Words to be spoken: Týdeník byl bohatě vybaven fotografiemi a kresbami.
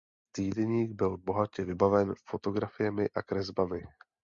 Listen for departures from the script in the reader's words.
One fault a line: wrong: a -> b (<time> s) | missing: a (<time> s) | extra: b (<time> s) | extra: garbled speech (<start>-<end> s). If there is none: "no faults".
no faults